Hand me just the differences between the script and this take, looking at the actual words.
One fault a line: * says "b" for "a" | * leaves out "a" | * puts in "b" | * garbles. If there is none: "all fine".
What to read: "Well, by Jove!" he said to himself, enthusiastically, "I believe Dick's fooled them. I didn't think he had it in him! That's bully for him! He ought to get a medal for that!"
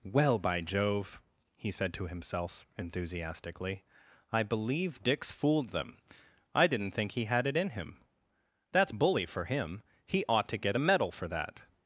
all fine